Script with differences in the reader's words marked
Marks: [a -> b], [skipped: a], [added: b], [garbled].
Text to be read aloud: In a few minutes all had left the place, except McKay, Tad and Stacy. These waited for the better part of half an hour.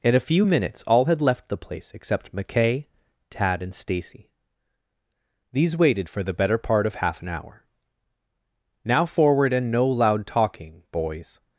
In a few minutes all had left the place, except McKay, Tad and Stacy. These waited for the better part of half an hour. [added: Now forward and no loud talking boys]